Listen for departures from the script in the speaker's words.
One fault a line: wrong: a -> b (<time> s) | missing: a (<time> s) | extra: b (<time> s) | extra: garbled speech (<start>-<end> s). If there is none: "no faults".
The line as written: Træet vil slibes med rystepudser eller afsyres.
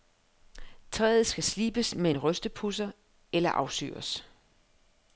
wrong: vil -> skal (1.3 s)
extra: en (2.1 s)